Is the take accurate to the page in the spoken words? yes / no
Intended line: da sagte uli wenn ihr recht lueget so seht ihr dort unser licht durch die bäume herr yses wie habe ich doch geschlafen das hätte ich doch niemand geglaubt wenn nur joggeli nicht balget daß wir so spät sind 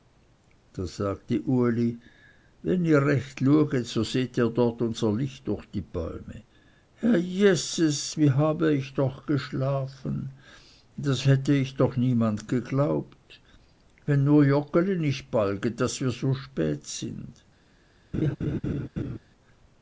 yes